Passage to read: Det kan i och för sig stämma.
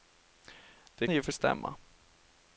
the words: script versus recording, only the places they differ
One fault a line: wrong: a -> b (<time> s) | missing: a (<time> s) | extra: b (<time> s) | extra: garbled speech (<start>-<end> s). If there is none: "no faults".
missing: kan (1.1 s)
missing: sig (1.3 s)